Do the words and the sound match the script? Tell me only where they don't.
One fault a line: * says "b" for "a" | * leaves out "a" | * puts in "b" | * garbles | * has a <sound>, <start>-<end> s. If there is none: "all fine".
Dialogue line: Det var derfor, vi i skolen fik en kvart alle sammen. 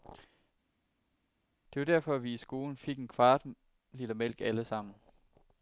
* puts in "liter mælk"